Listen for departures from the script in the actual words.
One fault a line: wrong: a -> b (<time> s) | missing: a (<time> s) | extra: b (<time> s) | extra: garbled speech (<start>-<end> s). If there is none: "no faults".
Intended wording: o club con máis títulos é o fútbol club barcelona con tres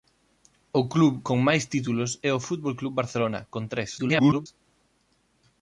extra: garbled speech (4.0-4.5 s)